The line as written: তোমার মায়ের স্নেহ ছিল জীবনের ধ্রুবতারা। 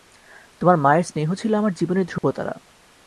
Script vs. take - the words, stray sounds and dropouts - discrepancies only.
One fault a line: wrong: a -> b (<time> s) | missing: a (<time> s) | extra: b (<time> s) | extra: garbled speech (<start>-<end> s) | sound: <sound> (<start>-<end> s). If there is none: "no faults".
extra: আমার (1.6 s)
sound: dropout (2.2-2.2 s)